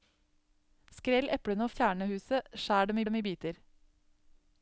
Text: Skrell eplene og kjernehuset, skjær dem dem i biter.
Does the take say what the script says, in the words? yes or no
yes